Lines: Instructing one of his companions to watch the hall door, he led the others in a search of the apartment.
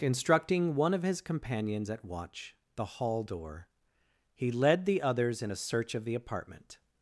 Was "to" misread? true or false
true